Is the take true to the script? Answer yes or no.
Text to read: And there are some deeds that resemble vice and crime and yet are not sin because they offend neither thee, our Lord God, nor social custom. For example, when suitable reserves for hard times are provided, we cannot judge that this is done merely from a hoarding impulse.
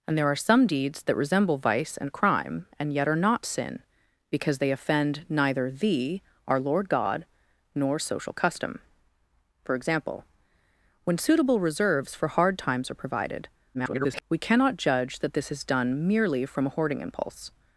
no